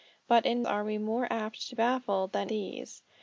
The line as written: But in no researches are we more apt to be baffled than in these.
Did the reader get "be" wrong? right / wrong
wrong